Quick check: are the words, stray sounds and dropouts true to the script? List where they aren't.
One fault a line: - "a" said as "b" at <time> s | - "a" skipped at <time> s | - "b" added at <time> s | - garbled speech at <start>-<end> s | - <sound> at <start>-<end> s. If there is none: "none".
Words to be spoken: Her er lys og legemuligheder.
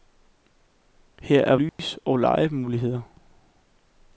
- dropout at 1.7-1.8 s